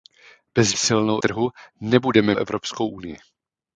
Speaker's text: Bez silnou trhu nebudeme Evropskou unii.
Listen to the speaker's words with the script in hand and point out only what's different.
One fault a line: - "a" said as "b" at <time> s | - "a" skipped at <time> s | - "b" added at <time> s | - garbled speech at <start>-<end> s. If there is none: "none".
none